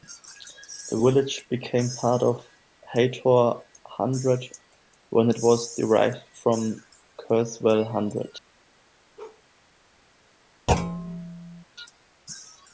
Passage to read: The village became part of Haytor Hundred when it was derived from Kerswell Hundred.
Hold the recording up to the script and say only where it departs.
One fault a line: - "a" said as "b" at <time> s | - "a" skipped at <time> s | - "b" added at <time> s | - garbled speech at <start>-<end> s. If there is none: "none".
none